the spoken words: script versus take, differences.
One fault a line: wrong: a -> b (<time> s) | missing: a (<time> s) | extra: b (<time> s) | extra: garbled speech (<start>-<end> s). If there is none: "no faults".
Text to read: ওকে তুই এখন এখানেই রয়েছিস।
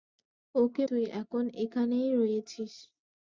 no faults